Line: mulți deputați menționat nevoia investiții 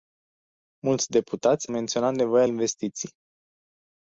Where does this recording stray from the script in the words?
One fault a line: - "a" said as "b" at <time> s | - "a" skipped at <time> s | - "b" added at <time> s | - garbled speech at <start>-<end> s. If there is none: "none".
none